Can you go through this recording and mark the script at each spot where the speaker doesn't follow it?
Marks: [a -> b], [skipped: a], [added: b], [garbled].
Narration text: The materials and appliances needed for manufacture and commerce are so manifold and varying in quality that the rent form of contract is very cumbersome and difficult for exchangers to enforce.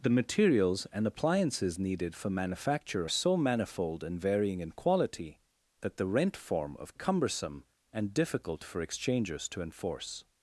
The materials and appliances needed for manufacture [skipped: and commerce are] so manifold and varying in quality that the rent form of [skipped: contract is very] cumbersome and difficult for exchangers to enforce.